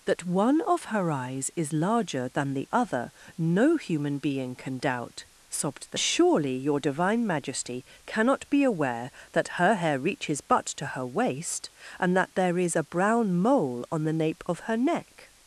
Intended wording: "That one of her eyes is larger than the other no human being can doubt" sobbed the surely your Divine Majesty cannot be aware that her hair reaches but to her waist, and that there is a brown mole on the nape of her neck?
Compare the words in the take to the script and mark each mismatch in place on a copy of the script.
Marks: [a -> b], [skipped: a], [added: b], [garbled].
"That one of her eyes is larger than the other no human being can doubt" sobbed the surely your Divine Majesty cannot be aware that her hair reaches but to her waist, and that there is a brown mole on the nape of her neck?